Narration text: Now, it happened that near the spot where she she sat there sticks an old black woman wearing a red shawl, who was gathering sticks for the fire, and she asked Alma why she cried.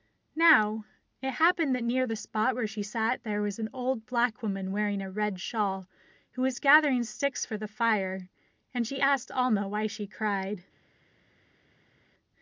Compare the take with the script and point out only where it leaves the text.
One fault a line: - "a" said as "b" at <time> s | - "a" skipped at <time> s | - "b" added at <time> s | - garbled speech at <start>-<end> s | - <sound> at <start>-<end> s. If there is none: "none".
- "she" skipped at 2.8 s
- "sticks" said as "was" at 3.4 s